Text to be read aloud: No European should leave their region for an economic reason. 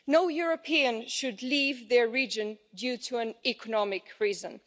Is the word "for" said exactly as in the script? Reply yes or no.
yes